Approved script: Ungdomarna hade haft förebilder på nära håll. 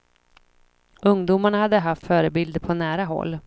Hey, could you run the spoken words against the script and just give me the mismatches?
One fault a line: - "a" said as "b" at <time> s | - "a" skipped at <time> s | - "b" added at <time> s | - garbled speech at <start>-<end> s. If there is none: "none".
none